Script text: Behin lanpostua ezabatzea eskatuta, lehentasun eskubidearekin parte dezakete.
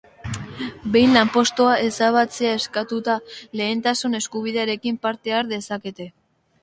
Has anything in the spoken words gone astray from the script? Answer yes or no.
yes